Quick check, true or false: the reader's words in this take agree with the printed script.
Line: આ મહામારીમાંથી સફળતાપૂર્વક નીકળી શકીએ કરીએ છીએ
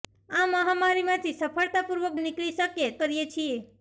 true